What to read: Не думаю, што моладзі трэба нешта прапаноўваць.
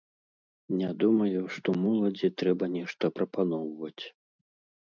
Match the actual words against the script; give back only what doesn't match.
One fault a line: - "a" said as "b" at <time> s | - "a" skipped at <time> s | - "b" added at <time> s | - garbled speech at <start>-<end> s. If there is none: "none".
none